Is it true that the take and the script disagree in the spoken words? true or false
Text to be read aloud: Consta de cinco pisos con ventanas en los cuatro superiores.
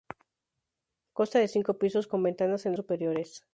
true